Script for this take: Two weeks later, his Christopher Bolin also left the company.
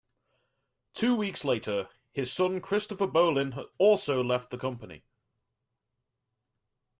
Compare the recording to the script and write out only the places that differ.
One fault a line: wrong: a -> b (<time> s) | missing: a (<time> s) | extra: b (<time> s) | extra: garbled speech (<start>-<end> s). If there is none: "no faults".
extra: son (2.3 s)